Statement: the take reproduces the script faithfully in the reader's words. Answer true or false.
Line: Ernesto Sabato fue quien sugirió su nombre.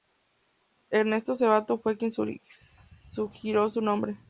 true